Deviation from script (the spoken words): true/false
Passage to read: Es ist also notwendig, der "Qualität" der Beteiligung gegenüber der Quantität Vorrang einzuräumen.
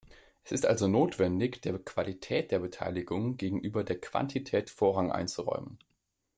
false